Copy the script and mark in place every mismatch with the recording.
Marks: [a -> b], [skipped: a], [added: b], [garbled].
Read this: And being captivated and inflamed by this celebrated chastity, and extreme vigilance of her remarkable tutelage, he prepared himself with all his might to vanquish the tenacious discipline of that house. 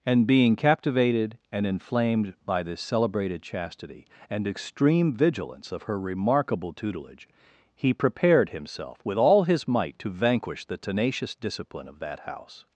And being captivated and inflamed by this celebrated chastity, and extreme vigilance of her remarkable tutelage, he prepared himself with all his might to vanquish the tenacious discipline of that house.